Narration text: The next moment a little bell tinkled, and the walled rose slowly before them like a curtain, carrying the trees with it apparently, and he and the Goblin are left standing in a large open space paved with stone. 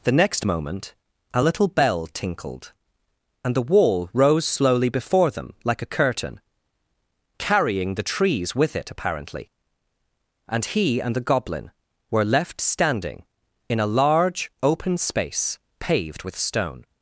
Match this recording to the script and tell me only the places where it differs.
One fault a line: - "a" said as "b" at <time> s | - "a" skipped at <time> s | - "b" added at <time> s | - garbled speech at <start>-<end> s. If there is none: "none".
- "walled" said as "wall" at 3.6 s
- "are" said as "were" at 12.1 s